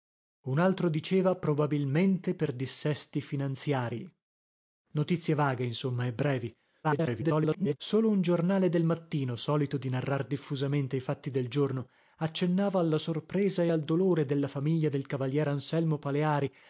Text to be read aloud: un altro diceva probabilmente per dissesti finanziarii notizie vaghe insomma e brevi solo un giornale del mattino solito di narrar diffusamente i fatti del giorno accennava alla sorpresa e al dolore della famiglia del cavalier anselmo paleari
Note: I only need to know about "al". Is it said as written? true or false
true